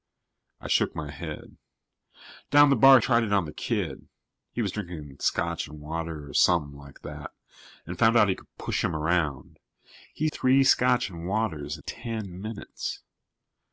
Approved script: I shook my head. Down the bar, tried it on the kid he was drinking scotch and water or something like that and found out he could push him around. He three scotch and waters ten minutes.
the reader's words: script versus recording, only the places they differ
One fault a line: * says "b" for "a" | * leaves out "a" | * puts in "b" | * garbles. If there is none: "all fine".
all fine